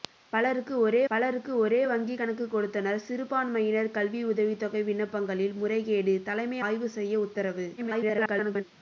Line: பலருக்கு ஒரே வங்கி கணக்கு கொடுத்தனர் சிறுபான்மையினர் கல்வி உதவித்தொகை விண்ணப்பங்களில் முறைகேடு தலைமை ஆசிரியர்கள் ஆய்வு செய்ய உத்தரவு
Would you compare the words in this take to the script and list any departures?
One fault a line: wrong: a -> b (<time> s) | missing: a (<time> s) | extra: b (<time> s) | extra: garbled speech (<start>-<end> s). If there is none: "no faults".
extra: பலருக்கு ஒரே (1.1 s)
missing: ஆசிரியர்கள் (6.6 s)
extra: garbled speech (7.8-8.6 s)